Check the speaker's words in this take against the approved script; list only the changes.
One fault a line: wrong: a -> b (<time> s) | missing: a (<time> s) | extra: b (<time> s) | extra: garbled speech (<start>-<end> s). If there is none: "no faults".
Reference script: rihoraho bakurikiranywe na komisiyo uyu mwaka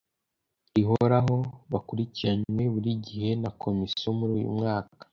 extra: buri gihe (2.7 s)
extra: muri (4.2 s)